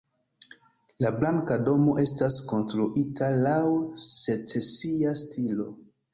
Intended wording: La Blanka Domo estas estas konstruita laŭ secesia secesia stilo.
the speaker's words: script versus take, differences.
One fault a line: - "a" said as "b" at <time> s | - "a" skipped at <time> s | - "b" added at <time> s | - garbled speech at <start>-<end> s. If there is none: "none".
- "estas" skipped at 2.4 s
- "secesia" skipped at 5.2 s